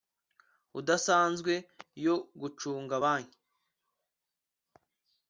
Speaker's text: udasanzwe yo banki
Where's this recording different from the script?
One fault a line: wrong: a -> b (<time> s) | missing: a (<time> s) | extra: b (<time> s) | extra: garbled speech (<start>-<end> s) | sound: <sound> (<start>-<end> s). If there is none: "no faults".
extra: gucunga (2.4 s)